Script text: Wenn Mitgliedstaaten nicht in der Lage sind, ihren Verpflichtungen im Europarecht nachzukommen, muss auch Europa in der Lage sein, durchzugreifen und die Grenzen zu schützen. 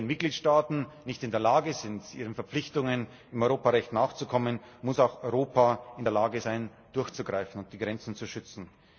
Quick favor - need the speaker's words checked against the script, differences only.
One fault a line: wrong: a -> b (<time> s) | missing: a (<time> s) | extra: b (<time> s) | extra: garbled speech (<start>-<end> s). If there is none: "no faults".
no faults